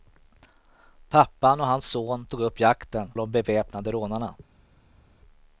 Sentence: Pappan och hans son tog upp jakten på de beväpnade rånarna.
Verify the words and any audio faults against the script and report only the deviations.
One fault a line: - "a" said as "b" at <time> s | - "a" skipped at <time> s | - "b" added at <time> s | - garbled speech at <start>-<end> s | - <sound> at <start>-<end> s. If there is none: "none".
- "på" skipped at 3.1 s